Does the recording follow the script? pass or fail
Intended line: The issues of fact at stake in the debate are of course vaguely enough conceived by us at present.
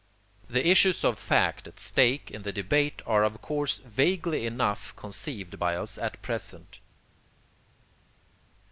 pass